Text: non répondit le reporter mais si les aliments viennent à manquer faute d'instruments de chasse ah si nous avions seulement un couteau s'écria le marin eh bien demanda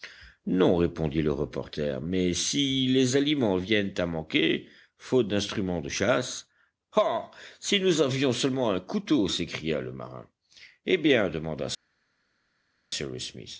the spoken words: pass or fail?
pass